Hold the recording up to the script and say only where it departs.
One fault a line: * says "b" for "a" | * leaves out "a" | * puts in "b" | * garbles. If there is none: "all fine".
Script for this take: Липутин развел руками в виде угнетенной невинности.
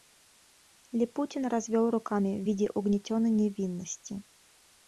all fine